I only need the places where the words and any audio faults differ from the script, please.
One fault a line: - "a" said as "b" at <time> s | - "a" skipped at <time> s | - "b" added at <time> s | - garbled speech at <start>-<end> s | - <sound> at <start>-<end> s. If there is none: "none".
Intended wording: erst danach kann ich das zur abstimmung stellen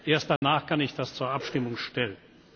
- dropout at 0.4-0.4 s